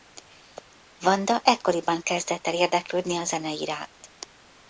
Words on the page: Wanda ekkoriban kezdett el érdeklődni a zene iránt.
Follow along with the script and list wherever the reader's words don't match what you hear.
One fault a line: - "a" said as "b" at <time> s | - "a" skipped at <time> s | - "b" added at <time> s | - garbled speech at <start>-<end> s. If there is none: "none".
none